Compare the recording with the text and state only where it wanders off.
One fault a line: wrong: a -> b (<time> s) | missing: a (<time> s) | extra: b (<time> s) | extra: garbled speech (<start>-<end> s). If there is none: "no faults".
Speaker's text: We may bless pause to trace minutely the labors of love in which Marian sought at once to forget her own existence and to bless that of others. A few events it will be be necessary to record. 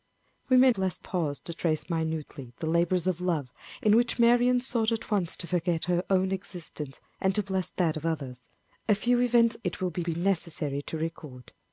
no faults